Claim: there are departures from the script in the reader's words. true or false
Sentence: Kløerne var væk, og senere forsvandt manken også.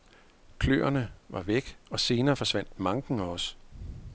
false